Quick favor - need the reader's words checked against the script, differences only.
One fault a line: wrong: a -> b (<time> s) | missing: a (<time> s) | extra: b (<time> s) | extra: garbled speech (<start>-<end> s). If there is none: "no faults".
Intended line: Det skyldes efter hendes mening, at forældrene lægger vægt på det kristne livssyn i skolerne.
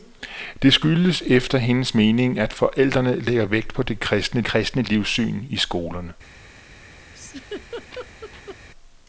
extra: kristne (4.4 s)